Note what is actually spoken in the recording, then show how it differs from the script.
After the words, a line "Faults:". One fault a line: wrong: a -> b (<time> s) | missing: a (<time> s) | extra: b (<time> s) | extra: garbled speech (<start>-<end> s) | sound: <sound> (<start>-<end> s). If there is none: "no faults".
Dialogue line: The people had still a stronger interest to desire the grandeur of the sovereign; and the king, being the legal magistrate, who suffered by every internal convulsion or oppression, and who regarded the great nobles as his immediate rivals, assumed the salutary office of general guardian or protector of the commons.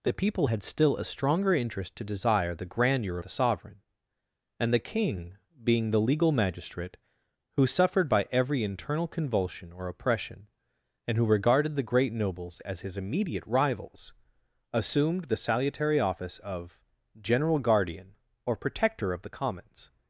The people had still a stronger interest to desire the grandeur the sovereign; and the king, being the legal magistrate, who suffered by every internal convulsion or oppression, and who regarded the great nobles as his immediate rivals, assumed the salutary office of general guardian or protector of the commons.
Faults:
missing: of (3.2 s)